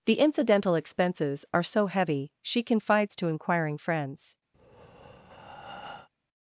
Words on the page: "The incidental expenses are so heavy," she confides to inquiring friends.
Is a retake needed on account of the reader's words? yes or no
no